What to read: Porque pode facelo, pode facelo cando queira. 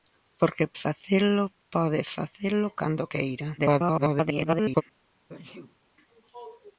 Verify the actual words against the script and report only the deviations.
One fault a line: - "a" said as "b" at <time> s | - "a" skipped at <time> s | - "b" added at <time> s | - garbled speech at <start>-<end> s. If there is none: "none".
- "pode" skipped at 0.7 s
- garbled speech at 3.6-4.8 s